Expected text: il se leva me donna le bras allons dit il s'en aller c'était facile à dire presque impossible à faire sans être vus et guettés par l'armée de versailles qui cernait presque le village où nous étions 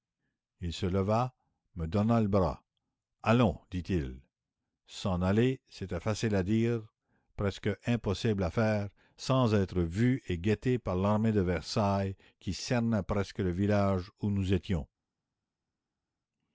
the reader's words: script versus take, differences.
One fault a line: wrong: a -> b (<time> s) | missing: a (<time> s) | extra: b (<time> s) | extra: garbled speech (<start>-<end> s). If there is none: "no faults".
no faults